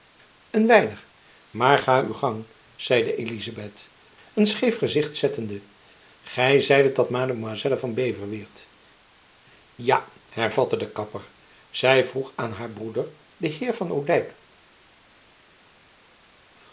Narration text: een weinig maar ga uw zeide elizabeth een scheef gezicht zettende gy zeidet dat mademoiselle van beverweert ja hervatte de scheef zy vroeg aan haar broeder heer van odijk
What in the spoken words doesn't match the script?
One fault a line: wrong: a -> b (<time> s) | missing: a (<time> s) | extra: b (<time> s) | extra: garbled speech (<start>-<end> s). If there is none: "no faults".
extra: gang (2.1 s)
wrong: scheef -> kapper (10.9 s)
extra: den (13.4 s)